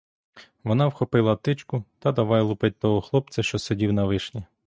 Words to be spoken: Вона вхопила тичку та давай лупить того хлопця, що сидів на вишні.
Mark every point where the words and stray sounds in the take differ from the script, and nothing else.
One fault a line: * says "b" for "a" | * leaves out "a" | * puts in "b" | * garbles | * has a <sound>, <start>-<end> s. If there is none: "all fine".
all fine